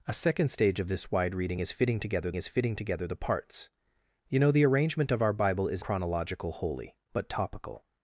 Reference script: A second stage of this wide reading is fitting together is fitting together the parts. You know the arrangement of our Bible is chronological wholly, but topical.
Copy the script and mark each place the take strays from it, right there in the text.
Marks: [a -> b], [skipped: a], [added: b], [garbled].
A second stage of this wide reading is fitting together is fitting together the parts. You know the arrangement of our Bible is chronological wholly, but topical.